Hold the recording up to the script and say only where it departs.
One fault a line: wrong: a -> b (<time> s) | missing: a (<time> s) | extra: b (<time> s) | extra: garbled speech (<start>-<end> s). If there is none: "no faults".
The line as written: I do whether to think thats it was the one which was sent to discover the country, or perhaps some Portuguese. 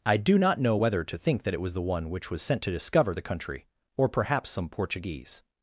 extra: not know (0.4 s)
wrong: thats -> that (1.4 s)